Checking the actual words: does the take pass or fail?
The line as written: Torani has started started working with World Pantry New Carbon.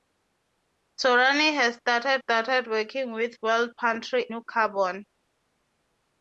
pass